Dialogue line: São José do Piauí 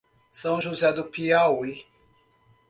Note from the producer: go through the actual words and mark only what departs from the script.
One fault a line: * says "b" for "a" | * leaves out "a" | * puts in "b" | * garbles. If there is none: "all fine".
all fine